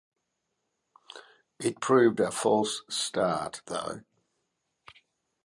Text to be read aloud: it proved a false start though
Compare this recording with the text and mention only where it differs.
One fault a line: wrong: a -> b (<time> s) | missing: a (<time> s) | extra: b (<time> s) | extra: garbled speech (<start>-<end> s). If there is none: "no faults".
no faults